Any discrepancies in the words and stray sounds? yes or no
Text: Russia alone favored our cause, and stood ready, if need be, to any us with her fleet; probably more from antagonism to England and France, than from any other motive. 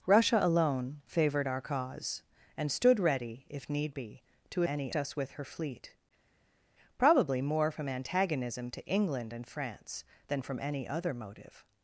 no